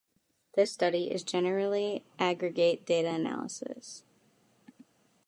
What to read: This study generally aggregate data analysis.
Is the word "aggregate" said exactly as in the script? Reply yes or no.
yes